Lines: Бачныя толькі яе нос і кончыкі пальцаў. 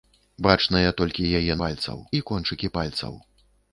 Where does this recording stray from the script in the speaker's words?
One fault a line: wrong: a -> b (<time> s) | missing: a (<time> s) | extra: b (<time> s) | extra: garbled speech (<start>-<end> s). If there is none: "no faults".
wrong: нос -> пальцаў (1.6 s)